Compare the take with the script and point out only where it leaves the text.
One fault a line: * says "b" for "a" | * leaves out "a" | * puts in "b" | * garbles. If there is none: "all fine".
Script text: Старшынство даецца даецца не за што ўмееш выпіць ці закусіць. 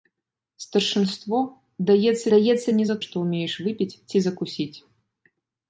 all fine